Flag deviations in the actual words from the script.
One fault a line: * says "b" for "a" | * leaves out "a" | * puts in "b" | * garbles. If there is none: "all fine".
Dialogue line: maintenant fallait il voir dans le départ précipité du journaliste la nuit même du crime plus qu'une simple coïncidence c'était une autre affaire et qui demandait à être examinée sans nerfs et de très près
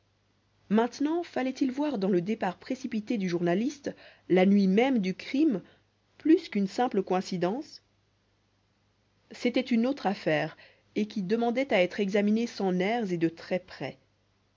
all fine